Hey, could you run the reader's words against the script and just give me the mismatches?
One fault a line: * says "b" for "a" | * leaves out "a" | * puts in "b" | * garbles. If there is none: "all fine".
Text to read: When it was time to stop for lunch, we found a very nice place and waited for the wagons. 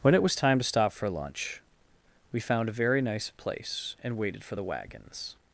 all fine